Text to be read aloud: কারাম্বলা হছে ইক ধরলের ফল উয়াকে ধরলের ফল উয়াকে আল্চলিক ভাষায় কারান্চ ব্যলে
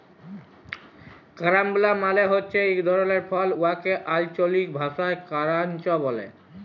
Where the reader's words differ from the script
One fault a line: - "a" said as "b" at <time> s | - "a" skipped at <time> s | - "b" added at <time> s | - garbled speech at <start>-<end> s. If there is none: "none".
- "মালে" added at 2.0 s
- "ধরলের ফল উয়াকে" skipped at 3.9 s